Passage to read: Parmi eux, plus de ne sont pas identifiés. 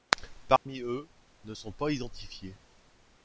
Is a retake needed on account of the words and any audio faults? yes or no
yes